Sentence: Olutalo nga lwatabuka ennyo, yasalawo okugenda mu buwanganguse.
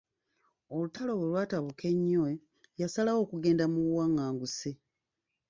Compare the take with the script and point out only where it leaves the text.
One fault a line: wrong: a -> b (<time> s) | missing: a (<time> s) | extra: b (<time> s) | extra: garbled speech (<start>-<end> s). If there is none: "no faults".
wrong: nga -> bwe (1.1 s)